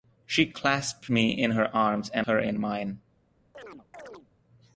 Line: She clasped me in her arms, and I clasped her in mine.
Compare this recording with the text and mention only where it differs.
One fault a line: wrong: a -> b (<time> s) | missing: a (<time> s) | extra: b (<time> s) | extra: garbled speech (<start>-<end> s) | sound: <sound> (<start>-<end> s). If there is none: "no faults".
missing: I clasped (2.2 s)
sound: chirp (3.5-4.3 s)